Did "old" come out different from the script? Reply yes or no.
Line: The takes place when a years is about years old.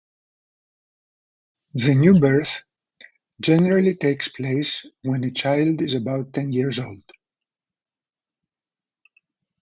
no